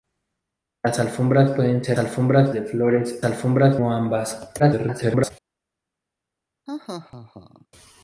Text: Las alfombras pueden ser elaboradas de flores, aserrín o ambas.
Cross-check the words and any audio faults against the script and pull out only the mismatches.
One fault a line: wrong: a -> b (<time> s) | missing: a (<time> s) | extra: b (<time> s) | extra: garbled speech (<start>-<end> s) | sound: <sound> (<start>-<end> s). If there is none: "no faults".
wrong: elaboradas -> alfombras (2.0 s)
wrong: aserrín -> alfombras (3.2 s)
extra: garbled speech (4.6-5.3 s)
sound: laugh (6.7-7.7 s)